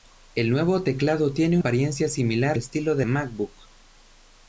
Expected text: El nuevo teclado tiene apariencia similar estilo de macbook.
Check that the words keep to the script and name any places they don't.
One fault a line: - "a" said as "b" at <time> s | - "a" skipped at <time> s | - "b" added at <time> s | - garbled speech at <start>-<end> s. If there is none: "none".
none